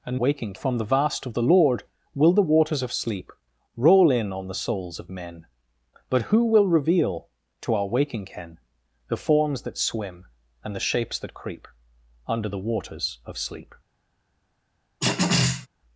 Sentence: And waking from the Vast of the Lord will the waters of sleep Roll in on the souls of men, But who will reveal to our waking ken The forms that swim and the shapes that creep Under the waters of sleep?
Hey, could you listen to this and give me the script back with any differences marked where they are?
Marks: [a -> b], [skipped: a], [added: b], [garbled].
And waking from the Vast of the Lord will the waters of sleep Roll in on the souls of men, But who will reveal to our waking ken The forms that swim and the shapes that creep Under the waters of sleep?